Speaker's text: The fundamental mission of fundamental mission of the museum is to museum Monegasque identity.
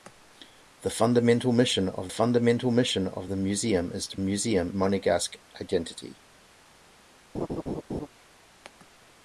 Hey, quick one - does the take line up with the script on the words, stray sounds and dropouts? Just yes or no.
no